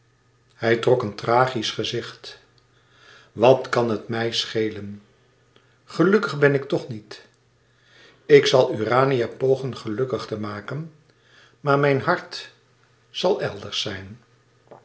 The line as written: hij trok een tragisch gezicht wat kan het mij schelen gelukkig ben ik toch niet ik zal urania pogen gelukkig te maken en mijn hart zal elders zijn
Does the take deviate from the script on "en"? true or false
true